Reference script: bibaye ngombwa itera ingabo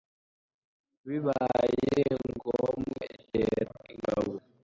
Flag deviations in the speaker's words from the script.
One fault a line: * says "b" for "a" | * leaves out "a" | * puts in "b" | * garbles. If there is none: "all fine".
all fine